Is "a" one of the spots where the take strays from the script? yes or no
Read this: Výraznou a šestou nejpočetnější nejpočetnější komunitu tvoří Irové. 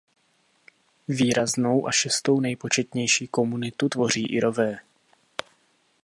no